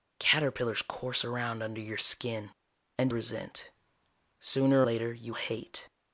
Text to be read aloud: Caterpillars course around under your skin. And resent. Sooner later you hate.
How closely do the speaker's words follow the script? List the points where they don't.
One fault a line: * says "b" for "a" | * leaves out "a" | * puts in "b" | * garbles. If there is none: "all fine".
all fine